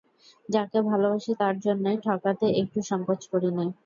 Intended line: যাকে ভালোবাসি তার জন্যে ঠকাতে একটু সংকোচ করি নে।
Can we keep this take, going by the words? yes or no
yes